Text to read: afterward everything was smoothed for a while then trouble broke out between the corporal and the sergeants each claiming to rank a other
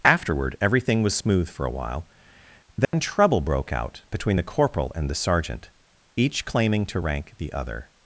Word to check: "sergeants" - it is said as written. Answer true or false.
false